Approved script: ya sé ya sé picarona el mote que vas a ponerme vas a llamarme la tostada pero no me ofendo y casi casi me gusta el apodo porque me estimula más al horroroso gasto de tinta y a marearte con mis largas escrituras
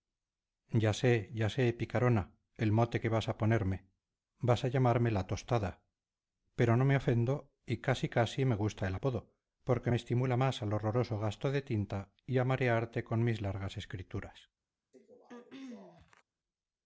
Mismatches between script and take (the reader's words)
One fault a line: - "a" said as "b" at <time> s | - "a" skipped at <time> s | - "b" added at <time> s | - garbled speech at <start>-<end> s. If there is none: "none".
none